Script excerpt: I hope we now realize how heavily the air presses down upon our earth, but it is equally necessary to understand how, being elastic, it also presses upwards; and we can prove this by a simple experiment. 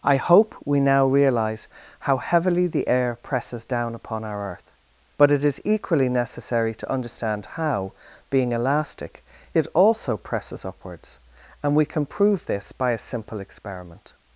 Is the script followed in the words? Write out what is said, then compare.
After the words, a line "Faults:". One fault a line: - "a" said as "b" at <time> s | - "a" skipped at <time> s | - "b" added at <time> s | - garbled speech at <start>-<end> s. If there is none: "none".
I hope we now realize how heavily the air presses down upon our earth, but it is equally necessary to understand how, being elastic, it also presses upwards; and we can prove this by a simple experiment.
Faults:
none